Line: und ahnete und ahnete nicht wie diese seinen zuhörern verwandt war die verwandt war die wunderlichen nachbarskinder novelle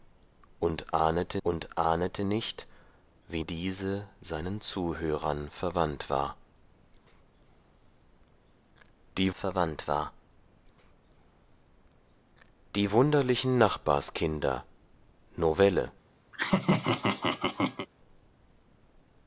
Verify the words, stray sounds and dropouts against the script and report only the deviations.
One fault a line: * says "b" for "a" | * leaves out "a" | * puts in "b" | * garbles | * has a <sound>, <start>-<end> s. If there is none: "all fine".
* has a laugh, 16.3-17.9 s